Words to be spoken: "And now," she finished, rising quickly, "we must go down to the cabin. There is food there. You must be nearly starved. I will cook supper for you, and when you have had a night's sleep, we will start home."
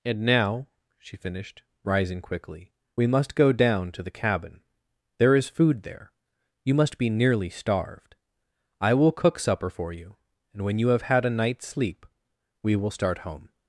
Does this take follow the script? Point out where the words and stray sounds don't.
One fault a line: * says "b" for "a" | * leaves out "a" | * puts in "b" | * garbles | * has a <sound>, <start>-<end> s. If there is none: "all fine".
all fine